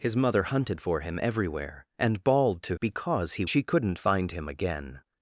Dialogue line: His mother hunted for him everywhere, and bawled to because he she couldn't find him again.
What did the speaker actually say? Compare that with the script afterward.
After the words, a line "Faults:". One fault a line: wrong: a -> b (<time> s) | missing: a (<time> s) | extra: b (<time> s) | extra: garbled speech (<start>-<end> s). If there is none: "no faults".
His mother hunted for him everywhere, and bawled to because he she couldn't find him again.
Faults:
no faults